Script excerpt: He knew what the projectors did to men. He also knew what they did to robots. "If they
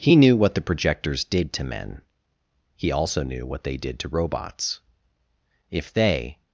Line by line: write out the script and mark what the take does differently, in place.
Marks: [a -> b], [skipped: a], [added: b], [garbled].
He knew what the projectors did to men. He also knew what they did to robots. "If they